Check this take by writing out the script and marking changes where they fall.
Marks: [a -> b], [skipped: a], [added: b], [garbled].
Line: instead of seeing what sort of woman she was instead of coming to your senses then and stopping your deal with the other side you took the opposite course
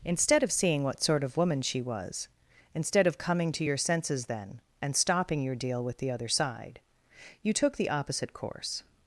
instead of seeing what sort of woman she was instead of coming to your senses then and stopping your deal with the other side you took the opposite course